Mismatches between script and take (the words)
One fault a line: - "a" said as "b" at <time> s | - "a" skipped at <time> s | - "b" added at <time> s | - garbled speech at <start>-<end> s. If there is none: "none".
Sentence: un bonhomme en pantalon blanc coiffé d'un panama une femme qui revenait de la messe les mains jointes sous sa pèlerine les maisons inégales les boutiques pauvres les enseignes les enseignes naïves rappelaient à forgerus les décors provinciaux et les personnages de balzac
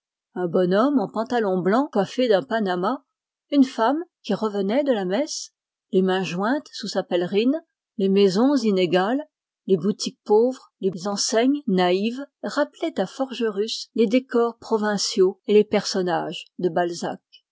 - "les enseignes" skipped at 11.6 s